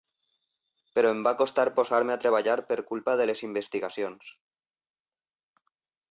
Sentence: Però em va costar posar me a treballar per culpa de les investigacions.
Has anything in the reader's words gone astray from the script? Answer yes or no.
no